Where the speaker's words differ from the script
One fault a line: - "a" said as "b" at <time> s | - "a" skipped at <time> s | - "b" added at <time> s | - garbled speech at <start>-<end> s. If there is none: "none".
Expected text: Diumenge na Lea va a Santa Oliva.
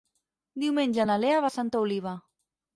none